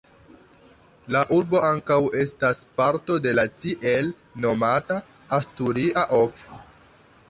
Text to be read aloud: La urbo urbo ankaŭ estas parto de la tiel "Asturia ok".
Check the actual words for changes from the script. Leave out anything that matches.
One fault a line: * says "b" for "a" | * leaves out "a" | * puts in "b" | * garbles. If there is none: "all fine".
* leaves out "urbo"
* puts in "nomata"